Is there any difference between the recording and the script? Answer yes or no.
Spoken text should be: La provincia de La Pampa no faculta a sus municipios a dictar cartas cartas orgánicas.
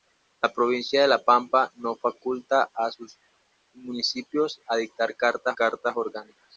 no